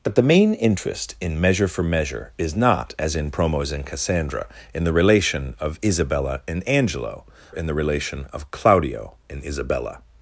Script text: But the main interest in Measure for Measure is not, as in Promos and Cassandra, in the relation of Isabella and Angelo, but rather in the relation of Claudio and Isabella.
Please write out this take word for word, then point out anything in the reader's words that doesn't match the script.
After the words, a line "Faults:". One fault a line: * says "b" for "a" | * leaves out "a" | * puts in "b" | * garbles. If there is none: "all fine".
But the main interest in Measure for Measure is not, as in Promos and Cassandra, in the relation of Isabella and Angelo, in the relation of Claudio and Isabella.
Faults:
* leaves out "but rather"